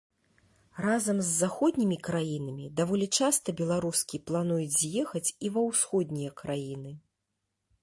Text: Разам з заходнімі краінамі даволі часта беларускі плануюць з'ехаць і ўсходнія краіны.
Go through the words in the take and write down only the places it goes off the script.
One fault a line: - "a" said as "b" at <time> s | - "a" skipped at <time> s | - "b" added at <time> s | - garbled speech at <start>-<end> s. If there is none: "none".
- "ва" added at 5.6 s